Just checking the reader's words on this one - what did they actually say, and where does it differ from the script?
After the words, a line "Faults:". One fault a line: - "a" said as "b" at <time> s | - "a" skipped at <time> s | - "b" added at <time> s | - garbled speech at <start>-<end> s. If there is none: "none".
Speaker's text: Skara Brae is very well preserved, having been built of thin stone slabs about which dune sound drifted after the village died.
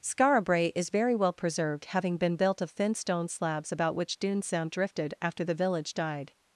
Skara Brae is very well preserved, having been built of thin stone slabs about which dune sound drifted after the village died.
Faults:
none